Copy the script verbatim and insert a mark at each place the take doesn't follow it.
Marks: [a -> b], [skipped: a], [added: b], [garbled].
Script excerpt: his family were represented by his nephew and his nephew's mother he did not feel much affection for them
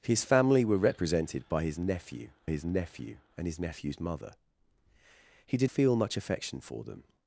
his family were represented by his nephew [added: his nephew] and his nephew's mother he did [skipped: not] feel much affection for them